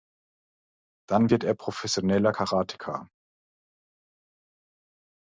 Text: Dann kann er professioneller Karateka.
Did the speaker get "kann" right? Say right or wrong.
wrong